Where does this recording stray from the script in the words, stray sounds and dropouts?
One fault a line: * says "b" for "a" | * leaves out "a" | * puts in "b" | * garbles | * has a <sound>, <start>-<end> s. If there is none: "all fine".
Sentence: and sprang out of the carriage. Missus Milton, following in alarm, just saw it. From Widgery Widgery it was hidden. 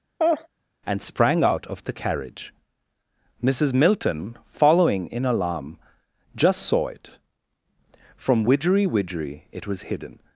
* has a laugh, 0.2-0.5 s